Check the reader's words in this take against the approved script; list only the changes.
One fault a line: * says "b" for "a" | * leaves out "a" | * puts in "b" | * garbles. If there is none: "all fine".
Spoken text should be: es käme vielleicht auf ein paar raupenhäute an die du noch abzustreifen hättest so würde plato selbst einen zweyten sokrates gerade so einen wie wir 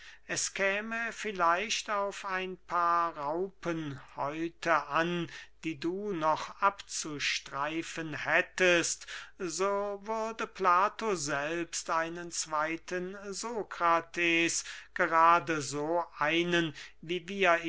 all fine